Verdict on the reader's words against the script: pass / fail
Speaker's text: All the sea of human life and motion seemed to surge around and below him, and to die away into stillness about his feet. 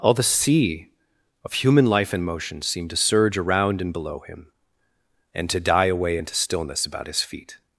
pass